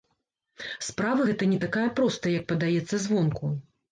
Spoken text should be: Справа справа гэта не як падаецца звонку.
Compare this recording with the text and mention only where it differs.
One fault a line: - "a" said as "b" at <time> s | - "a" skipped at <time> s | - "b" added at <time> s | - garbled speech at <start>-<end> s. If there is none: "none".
- "справа" skipped at 1.3 s
- "такая простая" added at 1.6 s